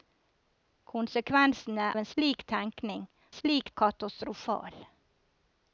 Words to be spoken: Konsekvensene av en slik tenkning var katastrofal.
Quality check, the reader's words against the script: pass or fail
fail